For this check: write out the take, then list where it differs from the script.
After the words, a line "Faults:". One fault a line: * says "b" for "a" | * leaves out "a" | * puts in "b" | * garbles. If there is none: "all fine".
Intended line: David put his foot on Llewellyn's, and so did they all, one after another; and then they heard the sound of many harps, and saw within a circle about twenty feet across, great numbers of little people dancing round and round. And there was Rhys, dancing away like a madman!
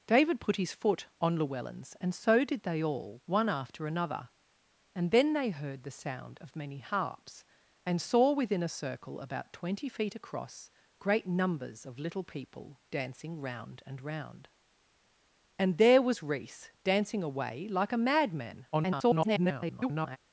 David put his foot on Llewellyn's, and so did they all, one after another; and then they heard the sound of many harps, and saw within a circle about twenty feet across, great numbers of little people dancing round and round. And there was Rhys, dancing away like a madman! [garbled]
Faults:
* garbles